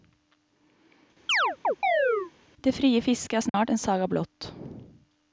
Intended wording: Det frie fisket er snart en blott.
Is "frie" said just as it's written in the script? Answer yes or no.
yes